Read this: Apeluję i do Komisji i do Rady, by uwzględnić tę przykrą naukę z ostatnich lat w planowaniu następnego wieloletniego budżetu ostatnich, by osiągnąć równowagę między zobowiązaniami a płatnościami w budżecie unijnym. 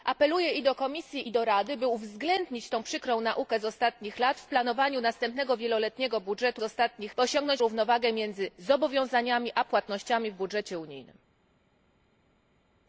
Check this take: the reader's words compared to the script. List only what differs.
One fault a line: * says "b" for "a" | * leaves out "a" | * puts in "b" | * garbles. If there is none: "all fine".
all fine